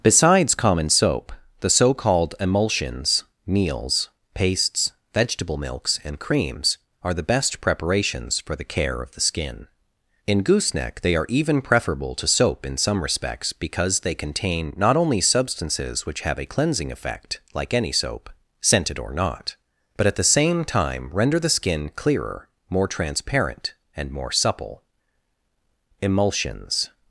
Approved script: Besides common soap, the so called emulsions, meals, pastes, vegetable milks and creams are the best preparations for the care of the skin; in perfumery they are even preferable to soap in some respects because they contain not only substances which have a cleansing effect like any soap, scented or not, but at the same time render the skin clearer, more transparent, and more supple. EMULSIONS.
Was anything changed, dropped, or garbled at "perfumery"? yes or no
yes